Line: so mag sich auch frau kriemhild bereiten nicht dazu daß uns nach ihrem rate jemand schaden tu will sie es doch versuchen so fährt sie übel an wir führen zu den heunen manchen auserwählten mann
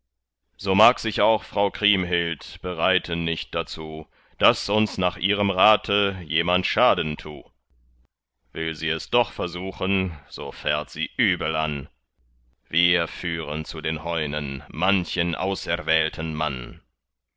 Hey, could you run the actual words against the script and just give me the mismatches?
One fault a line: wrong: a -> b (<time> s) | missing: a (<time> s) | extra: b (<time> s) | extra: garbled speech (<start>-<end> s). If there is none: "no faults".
no faults